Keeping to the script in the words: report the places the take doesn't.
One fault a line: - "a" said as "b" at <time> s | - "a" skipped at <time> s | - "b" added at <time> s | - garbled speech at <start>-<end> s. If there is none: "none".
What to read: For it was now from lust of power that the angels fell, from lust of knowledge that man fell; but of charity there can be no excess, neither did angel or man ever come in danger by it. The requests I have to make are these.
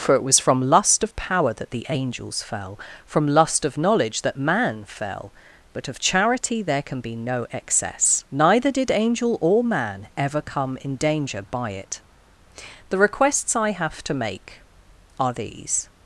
- "now" skipped at 0.4 s